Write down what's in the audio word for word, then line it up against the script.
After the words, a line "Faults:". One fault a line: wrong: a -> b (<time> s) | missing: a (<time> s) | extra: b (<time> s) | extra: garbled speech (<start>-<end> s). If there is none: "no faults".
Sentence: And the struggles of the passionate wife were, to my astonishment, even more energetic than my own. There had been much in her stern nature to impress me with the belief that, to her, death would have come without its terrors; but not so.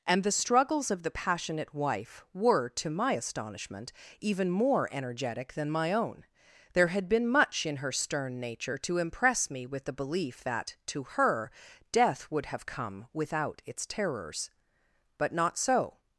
And the struggles of the passionate wife were, to my astonishment, even more energetic than my own. There had been much in her stern nature to impress me with the belief that, to her, death would have come without its terrors; but not so.
Faults:
no faults